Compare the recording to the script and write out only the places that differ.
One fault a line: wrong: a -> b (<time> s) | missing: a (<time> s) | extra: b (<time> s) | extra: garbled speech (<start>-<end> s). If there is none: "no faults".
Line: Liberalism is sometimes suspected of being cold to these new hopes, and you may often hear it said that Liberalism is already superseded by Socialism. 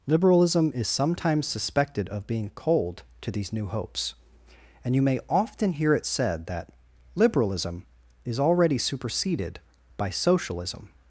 no faults